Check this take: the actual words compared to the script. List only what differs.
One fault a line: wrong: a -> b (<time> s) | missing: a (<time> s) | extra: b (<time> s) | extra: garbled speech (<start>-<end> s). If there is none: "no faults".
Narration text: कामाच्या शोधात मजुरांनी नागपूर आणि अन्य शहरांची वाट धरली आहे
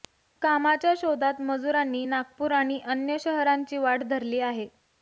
no faults